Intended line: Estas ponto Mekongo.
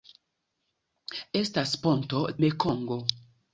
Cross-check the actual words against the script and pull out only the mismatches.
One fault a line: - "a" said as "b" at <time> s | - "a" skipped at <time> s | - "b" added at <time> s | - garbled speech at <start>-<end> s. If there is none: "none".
none